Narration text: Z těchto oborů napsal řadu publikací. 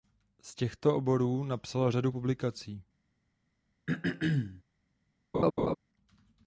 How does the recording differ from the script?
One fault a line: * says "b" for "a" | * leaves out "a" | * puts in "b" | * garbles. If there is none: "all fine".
all fine